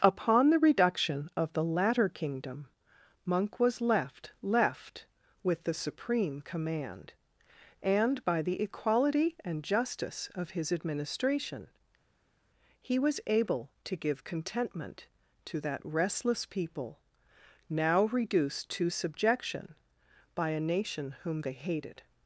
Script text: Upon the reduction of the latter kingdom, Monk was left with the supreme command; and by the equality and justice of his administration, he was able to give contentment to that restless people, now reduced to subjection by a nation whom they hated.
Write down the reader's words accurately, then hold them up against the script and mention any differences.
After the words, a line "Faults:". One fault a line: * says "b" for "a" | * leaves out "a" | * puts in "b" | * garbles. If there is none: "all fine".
Upon the reduction of the latter kingdom, Monk was left left with the supreme command; and by the equality and justice of his administration, he was able to give contentment to that restless people, now reduced to subjection by a nation whom they hated.
Faults:
* puts in "left"